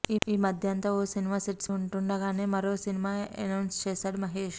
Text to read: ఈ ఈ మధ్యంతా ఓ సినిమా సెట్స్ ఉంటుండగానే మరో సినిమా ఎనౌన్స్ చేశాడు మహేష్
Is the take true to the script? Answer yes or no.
yes